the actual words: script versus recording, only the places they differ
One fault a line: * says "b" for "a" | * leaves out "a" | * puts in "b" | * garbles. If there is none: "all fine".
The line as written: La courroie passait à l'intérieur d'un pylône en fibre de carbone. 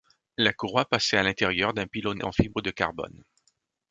all fine